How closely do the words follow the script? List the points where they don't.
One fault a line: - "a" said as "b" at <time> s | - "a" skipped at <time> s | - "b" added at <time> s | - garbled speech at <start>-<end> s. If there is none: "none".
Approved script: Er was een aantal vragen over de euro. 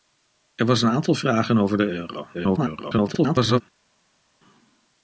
- garbled speech at 2.3-3.6 s